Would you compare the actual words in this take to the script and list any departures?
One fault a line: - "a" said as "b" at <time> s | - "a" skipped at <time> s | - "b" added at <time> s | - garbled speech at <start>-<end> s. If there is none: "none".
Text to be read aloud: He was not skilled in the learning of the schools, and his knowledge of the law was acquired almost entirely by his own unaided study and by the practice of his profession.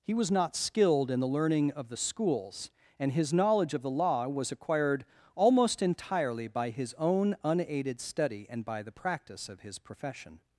none